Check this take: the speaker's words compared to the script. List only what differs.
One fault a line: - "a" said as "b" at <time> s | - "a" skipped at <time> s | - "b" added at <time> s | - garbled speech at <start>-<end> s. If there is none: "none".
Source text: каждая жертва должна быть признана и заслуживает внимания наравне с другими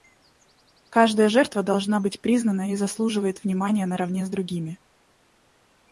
none